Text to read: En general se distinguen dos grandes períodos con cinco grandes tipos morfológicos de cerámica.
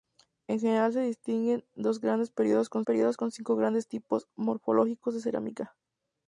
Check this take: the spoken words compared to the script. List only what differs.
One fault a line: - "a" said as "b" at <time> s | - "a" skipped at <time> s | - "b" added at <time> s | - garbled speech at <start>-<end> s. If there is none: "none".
- "períodos con" added at 2.8 s